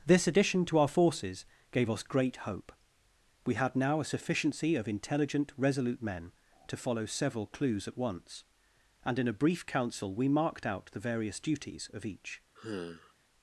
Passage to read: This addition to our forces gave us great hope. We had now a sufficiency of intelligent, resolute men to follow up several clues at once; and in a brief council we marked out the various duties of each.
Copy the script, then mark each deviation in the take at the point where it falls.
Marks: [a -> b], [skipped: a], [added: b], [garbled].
This addition to our forces gave us great hope. We had now a sufficiency of intelligent, resolute men to follow [skipped: up] several clues at once; and in a brief council we marked out the various duties of each.